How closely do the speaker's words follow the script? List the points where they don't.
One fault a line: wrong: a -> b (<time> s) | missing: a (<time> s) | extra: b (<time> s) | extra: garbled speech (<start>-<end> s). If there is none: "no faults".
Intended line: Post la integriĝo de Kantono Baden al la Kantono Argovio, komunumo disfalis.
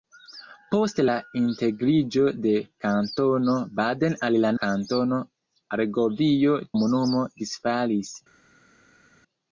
no faults